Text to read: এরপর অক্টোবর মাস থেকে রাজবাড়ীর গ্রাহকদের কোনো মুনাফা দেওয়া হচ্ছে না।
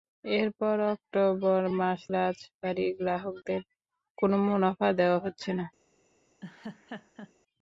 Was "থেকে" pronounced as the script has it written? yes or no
no